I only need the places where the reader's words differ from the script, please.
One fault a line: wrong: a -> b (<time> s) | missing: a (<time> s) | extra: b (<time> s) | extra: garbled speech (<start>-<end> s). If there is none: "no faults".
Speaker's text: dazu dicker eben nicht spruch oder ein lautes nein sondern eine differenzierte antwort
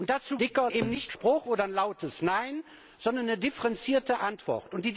no faults